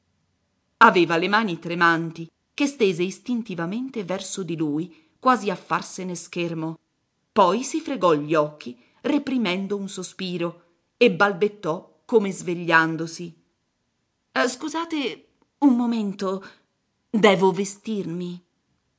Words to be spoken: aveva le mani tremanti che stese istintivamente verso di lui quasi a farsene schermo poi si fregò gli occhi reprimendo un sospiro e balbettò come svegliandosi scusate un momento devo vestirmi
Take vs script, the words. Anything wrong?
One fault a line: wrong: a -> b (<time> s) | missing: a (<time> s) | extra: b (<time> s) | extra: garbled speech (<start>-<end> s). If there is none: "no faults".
no faults